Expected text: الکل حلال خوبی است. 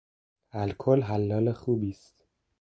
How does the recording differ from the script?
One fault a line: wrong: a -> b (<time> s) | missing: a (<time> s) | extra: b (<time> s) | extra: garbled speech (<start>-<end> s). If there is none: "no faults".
no faults